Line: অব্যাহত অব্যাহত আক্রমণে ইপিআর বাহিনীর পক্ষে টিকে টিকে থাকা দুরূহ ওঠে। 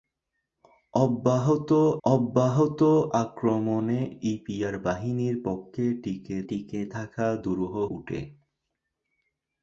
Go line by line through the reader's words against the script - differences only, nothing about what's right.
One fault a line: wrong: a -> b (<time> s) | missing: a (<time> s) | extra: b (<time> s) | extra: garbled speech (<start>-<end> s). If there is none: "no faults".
no faults